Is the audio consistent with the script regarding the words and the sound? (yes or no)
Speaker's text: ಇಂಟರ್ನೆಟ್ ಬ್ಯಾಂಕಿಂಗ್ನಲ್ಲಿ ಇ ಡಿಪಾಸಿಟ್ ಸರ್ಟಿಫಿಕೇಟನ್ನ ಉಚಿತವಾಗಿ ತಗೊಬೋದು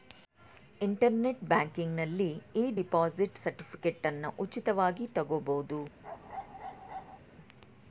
no